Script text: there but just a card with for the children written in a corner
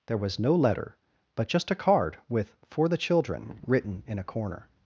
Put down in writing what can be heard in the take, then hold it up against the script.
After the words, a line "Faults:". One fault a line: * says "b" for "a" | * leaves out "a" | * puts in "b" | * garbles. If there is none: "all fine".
there was no letter but just a card with for the children written in a corner
Faults:
* puts in "was no letter"